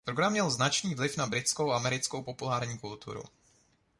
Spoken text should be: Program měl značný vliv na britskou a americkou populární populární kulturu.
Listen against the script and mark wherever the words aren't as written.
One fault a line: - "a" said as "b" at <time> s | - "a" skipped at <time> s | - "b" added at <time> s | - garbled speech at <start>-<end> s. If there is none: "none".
- "populární" skipped at 2.8 s